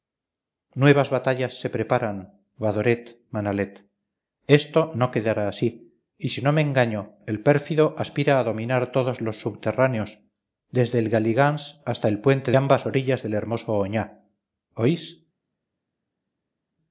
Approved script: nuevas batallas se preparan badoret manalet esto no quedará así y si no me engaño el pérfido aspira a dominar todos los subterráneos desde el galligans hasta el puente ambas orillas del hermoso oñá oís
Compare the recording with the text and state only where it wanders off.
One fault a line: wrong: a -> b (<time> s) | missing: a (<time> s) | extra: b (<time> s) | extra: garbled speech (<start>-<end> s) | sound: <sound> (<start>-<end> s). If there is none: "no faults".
no faults